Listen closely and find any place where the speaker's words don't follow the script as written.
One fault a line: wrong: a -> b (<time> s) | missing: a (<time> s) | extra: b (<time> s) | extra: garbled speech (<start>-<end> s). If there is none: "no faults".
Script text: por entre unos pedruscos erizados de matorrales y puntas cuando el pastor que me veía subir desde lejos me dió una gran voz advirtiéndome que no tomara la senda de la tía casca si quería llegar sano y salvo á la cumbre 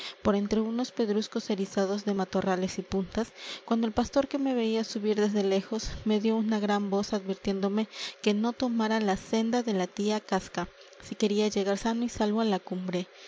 no faults